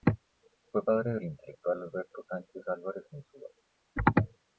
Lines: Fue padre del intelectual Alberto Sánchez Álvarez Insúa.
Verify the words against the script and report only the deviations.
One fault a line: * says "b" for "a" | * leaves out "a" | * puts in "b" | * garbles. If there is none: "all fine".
all fine